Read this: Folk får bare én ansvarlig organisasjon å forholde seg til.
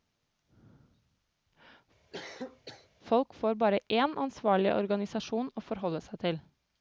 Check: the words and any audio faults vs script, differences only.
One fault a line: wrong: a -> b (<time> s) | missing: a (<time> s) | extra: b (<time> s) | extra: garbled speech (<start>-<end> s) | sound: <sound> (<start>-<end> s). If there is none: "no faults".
sound: cough (2.1-2.9 s)